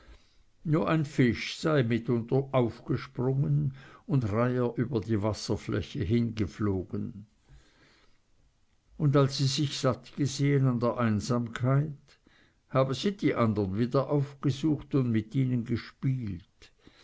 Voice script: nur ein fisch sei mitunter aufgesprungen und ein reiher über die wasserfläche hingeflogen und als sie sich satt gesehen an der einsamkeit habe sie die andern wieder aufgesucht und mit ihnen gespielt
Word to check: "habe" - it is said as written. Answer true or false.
true